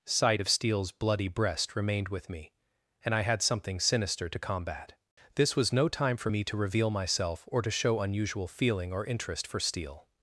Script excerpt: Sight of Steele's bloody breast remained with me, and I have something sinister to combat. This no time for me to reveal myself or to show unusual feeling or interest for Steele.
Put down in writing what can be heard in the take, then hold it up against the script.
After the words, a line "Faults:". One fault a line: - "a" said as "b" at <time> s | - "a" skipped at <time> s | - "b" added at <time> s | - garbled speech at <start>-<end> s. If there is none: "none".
Sight of Steele's bloody breast remained with me, and I had something sinister to combat. This was no time for me to reveal myself or to show unusual feeling or interest for Steele.
Faults:
- "have" said as "had" at 3.2 s
- "was" added at 5.6 s